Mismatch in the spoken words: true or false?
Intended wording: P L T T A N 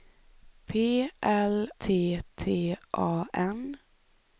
false